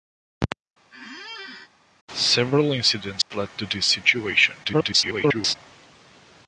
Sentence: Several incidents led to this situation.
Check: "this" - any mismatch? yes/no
no